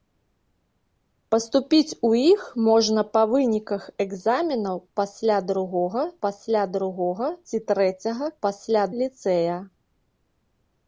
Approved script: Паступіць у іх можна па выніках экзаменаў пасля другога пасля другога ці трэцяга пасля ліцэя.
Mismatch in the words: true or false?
false